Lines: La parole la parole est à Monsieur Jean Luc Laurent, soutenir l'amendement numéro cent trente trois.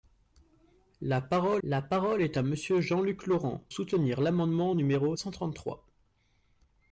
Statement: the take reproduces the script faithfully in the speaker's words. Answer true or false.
true